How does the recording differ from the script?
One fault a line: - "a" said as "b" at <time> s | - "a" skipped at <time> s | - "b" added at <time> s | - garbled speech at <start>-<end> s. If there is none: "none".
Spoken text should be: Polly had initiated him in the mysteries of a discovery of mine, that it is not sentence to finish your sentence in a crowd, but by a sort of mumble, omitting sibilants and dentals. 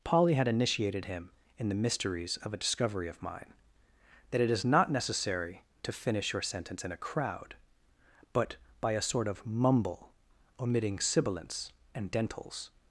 - "sentence" said as "necessary" at 4.9 s